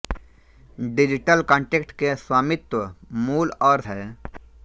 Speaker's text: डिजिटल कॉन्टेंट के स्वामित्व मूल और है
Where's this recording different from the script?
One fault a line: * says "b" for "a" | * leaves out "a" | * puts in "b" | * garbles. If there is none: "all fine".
all fine